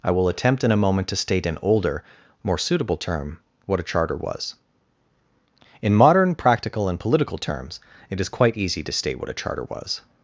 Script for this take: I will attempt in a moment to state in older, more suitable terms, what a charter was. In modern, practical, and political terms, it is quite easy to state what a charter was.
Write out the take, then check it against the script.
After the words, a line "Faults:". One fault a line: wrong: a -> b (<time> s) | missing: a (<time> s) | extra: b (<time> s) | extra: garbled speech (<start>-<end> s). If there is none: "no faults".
I will attempt in a moment to state in older, more suitable term, what a charter was. In modern, practical, and political terms, it is quite easy to state what a charter was.
Faults:
wrong: terms -> term (3.0 s)